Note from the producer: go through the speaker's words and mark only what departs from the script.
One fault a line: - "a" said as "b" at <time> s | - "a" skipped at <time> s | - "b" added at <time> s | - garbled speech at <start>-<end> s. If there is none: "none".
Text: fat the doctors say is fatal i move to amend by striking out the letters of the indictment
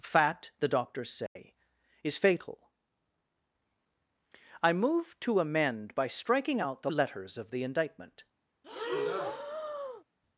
none